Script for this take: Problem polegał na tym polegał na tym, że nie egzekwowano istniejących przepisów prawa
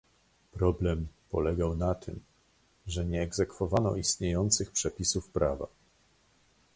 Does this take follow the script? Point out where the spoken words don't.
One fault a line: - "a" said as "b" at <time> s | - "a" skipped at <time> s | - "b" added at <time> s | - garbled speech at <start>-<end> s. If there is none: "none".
- "polegał na tym" skipped at 2.2 s